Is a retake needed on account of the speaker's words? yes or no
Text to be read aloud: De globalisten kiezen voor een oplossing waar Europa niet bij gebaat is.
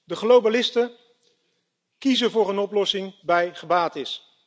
yes